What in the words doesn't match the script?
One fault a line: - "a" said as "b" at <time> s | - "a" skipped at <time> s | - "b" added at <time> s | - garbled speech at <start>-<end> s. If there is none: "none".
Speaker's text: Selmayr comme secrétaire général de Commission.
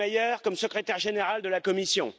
- "la" added at 1.5 s